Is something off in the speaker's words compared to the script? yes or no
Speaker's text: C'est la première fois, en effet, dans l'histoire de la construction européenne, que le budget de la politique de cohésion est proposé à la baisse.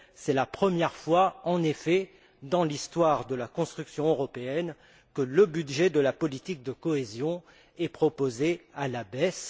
no